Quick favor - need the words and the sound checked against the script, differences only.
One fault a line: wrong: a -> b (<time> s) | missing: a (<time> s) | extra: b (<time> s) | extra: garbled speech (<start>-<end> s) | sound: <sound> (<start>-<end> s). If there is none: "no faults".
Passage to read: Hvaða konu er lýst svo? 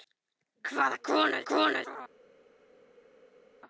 wrong: lýst -> konu (1.5 s)